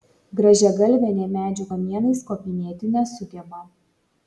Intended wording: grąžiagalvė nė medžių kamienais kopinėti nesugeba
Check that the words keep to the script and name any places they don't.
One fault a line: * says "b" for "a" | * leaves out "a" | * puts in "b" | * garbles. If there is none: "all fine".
all fine